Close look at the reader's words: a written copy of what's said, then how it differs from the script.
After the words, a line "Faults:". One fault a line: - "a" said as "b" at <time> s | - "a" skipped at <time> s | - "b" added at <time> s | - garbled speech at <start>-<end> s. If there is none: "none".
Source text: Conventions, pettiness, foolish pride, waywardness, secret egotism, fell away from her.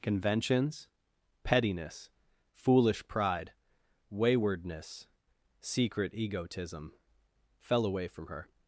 Conventions, pettiness, foolish pride, waywardness, secret egotism, fell away from her.
Faults:
none